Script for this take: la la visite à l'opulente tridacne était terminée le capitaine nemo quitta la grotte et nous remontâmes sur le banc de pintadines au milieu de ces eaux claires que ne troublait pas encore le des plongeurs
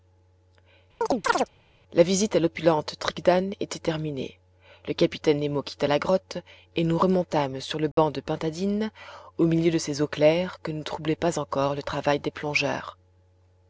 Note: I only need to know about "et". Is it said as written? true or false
true